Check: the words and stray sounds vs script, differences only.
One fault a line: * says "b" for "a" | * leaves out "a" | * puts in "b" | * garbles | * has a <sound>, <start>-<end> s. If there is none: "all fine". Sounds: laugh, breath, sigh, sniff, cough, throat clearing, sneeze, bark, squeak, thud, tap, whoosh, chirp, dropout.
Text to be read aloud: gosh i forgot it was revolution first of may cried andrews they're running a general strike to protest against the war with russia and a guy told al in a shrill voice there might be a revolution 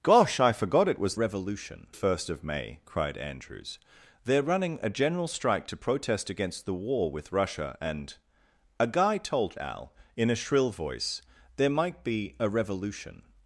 all fine